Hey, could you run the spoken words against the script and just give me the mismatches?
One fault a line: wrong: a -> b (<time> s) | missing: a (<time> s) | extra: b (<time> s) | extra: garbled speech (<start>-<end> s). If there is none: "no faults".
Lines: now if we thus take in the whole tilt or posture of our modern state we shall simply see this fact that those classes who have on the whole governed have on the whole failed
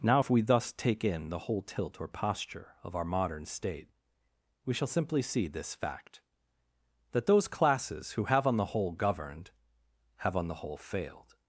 no faults